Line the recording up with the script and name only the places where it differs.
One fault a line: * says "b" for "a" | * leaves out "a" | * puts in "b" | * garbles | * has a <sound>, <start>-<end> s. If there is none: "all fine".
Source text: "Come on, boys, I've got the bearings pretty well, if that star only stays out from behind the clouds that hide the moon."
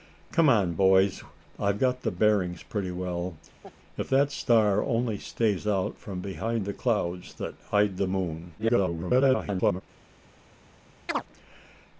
* has a laugh, 3.6-3.8 s
* garbles
* has a chirp, 11.1-11.2 s